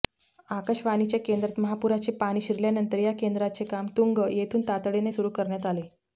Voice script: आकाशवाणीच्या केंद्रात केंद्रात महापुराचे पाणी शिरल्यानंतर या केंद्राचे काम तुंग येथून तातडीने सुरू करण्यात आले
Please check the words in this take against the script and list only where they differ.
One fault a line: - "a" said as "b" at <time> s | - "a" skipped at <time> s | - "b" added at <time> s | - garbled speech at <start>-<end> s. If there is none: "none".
- "केंद्रात" skipped at 1.6 s